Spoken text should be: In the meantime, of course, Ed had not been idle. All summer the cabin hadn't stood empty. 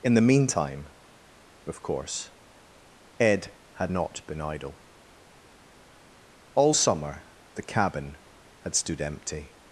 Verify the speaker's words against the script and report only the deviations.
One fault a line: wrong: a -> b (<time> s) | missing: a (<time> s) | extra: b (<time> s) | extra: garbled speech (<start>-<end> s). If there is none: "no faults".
wrong: hadn't -> had (8.6 s)